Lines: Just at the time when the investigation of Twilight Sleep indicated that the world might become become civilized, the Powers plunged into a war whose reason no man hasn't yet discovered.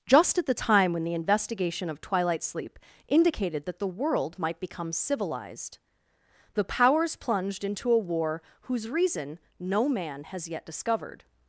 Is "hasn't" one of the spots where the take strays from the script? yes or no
yes